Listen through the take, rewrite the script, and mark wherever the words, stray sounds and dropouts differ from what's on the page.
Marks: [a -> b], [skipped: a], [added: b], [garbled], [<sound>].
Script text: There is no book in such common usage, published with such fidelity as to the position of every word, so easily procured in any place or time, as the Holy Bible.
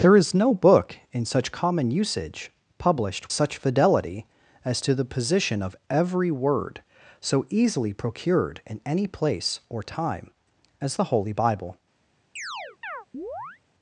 There is no book in such common usage, published [skipped: with] such fidelity as to the position of every word, so easily procured in any place or time, as the Holy Bible. [chirp]